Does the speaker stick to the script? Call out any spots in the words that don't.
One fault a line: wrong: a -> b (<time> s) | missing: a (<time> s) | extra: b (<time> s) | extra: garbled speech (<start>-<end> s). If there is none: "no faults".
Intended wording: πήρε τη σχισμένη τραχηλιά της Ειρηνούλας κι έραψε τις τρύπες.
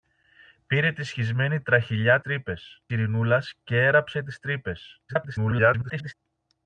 wrong: της -> τρύπες (2.2 s)
extra: garbled speech (5.1-6.1 s)